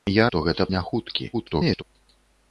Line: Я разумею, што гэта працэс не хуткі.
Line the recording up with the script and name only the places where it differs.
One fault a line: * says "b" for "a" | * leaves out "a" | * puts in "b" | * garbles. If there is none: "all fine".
* leaves out "разумею"
* leaves out "працэс"
* garbles